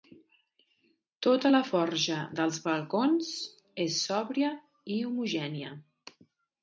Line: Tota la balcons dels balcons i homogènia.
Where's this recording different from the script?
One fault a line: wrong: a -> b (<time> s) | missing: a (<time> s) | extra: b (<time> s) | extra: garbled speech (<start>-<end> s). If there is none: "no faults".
wrong: balcons -> forja (1.7 s)
extra: és sòbria (3.9 s)